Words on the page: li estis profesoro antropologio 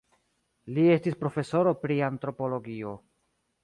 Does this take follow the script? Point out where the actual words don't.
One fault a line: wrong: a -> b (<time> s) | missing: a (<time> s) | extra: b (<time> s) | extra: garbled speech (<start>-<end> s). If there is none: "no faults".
extra: pri (1.9 s)